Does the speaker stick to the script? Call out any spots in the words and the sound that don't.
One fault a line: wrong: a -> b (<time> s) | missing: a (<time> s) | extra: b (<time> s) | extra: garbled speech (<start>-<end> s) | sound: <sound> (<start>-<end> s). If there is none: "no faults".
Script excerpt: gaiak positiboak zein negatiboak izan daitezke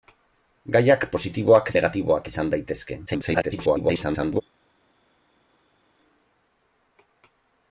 missing: zein (1.7 s)
extra: garbled speech (3.1-4.4 s)